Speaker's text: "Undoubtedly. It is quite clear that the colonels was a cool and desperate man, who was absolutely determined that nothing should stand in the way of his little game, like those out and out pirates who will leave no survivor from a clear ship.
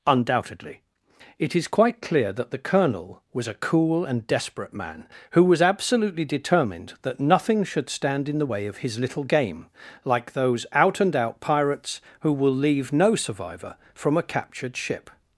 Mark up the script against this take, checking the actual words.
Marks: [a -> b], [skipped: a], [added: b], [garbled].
"Undoubtedly. It is quite clear that the [colonels -> colonel] was a cool and desperate man, who was absolutely determined that nothing should stand in the way of his little game, like those out and out pirates who will leave no survivor from a [clear -> captured] ship.